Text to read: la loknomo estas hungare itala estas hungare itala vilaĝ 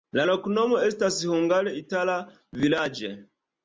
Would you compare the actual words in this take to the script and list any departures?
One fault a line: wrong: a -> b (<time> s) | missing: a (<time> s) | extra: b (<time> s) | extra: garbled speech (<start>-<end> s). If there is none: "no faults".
missing: estas hungare itala (2.2 s)